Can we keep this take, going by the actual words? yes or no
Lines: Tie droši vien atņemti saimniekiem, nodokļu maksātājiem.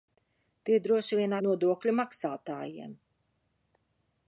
no